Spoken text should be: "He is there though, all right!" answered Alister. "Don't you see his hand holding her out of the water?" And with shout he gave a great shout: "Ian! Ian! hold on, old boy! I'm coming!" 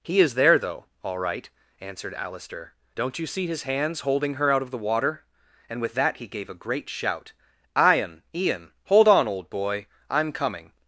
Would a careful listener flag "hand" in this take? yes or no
yes